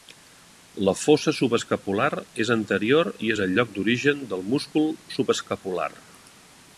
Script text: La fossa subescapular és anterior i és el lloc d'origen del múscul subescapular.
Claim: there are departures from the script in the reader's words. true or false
false